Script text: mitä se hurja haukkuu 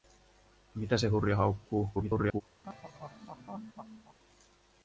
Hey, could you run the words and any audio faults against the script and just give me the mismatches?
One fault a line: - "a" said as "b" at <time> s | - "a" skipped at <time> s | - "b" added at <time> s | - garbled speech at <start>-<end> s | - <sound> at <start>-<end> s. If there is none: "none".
- garbled speech at 1.9-2.4 s
- laugh at 2.6-4.2 s